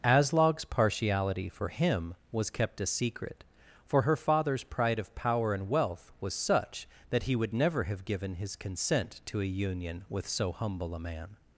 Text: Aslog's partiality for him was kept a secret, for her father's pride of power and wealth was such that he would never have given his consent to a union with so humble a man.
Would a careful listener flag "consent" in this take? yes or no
no